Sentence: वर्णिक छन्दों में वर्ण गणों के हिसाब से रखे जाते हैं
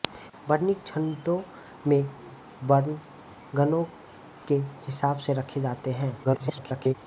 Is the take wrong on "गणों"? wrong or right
right